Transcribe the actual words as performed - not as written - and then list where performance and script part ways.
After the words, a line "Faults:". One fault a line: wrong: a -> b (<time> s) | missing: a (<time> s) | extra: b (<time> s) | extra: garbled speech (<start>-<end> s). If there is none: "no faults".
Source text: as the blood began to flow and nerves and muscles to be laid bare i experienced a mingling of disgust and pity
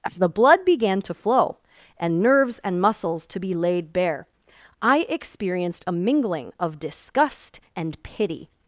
as the blood began to flow and nerves and muscles to be laid bare i experienced a mingling of disgust and pity
Faults:
no faults